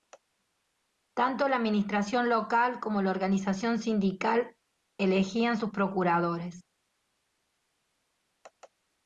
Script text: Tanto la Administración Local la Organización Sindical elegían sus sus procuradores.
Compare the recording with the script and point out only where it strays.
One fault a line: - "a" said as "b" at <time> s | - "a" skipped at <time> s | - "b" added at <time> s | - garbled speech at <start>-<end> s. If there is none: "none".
- "como" added at 2.8 s
- "sus" skipped at 5.7 s